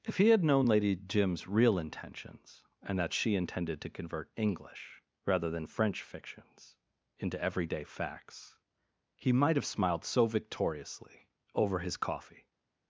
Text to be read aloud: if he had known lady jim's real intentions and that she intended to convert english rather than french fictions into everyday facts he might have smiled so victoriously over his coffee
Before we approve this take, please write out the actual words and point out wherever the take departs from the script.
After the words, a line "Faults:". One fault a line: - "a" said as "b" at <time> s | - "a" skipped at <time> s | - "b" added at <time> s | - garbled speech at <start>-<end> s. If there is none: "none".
if he had known lady jim's real intentions and that she intended to convert english rather than french fictions into everyday facts he might have smiled so victoriously over his coffee
Faults:
none